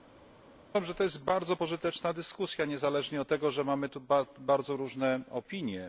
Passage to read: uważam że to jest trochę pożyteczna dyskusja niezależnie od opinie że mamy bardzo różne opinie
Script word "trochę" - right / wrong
wrong